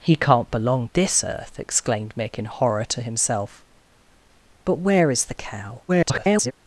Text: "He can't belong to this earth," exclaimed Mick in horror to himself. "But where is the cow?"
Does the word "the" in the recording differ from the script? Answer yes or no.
no